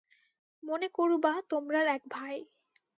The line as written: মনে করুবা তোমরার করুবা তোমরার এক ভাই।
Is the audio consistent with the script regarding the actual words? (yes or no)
no